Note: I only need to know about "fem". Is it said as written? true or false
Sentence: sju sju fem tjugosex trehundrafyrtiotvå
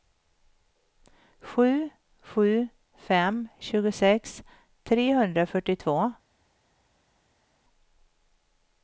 true